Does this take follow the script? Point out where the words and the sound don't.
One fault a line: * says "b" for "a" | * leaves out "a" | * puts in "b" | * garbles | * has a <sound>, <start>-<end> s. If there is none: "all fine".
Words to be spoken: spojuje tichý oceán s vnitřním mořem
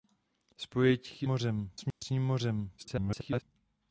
* says "mořem" for "oceán"
* has a dropout, 1.9-2.0 s
* garbles